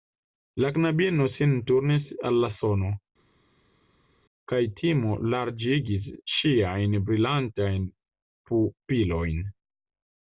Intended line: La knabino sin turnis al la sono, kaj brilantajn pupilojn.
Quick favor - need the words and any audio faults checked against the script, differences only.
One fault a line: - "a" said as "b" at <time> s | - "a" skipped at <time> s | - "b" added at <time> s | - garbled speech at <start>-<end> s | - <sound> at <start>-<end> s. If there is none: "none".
- "timo larĝigis ŝiajn" added at 4.8 s